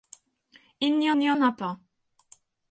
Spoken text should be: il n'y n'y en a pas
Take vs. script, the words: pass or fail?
pass